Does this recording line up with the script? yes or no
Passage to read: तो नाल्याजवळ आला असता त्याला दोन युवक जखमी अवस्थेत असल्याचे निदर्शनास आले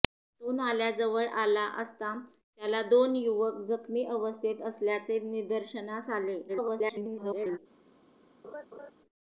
no